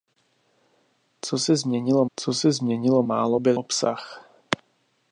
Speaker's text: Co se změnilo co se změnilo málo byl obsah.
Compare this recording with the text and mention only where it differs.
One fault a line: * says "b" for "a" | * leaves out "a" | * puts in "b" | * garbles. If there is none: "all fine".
all fine